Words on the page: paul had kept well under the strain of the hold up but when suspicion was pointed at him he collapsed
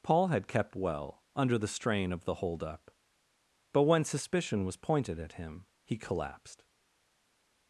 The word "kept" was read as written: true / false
true